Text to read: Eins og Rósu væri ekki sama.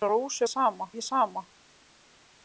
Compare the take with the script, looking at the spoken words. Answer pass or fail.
fail